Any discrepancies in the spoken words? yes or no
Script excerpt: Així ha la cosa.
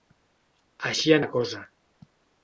no